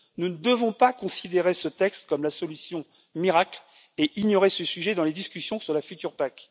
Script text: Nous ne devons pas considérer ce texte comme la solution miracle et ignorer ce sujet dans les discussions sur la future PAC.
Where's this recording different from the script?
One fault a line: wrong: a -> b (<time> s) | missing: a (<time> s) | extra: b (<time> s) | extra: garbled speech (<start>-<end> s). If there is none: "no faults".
no faults